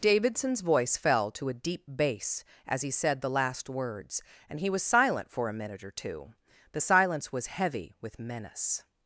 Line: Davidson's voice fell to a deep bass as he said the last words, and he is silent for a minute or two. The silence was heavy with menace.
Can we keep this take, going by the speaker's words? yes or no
no